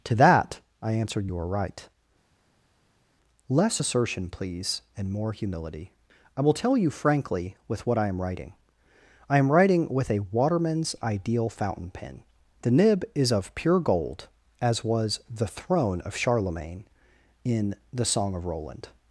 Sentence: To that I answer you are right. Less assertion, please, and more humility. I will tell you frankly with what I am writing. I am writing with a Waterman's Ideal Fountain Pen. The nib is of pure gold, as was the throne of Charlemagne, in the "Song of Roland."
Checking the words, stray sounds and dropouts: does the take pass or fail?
fail